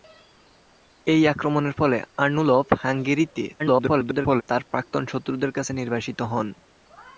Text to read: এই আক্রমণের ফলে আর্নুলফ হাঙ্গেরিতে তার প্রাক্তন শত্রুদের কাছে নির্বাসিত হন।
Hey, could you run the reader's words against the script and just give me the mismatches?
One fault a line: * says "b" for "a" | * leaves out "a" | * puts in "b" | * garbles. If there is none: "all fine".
* garbles